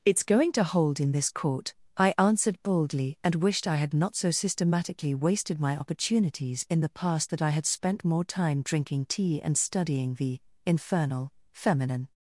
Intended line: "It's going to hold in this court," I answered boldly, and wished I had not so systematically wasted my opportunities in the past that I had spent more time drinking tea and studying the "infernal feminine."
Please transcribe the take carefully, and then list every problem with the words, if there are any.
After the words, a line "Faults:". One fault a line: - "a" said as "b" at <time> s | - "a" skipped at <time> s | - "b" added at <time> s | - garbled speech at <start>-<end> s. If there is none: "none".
"It's going to hold in this court," I answered boldly, and wished I had not so systematically wasted my opportunities in the past that I had spent more time drinking tea and studying the "infernal feminine."
Faults:
none